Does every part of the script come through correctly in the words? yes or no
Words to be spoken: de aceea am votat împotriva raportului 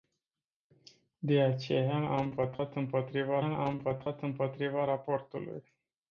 no